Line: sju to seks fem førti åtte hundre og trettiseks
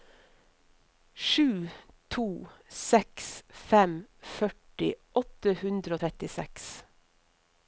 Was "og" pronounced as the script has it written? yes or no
yes